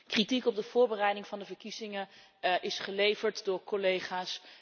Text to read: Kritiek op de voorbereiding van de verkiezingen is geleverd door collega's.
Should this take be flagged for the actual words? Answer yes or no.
no